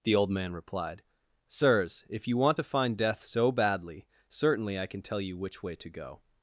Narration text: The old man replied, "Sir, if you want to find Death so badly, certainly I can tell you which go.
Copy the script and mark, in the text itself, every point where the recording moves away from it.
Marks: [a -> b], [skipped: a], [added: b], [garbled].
The old man replied, ["Sir, -> Sirs] if you want to find Death so badly, certainly I can tell you which [added: way to] go.